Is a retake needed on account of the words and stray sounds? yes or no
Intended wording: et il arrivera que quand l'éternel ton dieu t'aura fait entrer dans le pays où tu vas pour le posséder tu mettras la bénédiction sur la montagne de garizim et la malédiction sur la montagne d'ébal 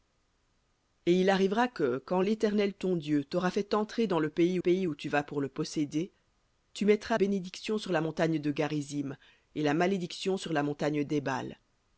yes